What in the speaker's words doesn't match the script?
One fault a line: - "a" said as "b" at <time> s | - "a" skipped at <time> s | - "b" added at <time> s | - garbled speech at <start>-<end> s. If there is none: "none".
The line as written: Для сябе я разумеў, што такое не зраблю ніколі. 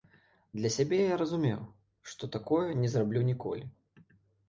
none